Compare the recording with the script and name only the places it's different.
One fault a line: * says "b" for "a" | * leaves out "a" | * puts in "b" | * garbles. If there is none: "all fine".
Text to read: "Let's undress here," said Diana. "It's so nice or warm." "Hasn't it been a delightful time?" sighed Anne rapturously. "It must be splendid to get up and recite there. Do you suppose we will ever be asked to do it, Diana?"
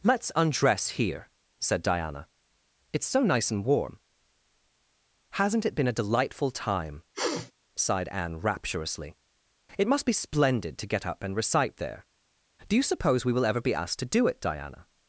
* says "and" for "or"